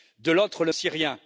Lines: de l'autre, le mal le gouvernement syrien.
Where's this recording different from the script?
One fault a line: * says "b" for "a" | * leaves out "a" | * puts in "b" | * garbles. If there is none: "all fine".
* leaves out "mal le gouvernement"